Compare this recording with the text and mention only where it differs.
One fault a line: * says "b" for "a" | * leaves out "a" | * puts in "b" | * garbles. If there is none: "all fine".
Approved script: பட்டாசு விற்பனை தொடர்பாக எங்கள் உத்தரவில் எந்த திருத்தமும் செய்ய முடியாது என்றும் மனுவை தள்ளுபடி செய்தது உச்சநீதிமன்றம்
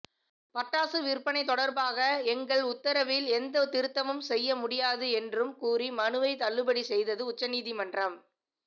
* puts in "கூறி"